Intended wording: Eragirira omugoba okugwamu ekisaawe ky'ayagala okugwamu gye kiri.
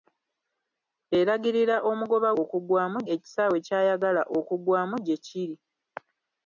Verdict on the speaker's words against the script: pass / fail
pass